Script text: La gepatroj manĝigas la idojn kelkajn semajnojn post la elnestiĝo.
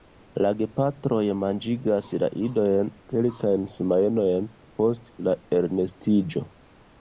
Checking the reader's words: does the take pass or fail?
pass